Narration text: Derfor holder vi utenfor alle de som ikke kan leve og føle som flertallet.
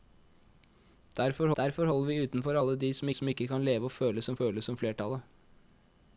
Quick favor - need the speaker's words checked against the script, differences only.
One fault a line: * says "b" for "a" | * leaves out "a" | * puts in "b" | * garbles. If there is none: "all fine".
* puts in "derfor"
* puts in "som"
* puts in "føle som"